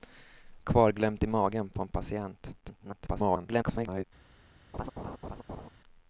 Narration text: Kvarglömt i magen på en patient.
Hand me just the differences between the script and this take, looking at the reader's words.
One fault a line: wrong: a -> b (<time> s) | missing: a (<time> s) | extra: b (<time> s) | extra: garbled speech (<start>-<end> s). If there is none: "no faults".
extra: garbled speech (2.6-4.0 s)